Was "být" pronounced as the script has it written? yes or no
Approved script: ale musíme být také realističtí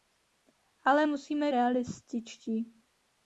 no